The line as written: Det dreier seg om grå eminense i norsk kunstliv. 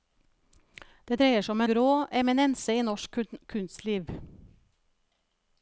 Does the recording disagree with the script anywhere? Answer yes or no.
no